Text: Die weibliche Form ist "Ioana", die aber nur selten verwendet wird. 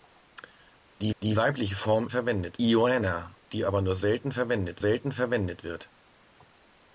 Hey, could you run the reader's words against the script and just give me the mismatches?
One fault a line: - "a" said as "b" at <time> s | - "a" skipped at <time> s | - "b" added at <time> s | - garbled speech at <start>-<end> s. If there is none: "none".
- "die" added at 1.2 s
- "ist" said as "verwendet" at 2.1 s
- "selten verwendet" added at 4.8 s